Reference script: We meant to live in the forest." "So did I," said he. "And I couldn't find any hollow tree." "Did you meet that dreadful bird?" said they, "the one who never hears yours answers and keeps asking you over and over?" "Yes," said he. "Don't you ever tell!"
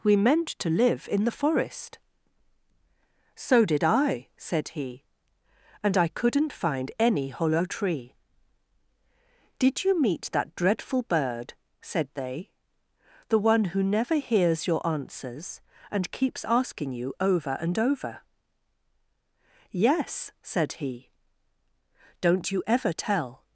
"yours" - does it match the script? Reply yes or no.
no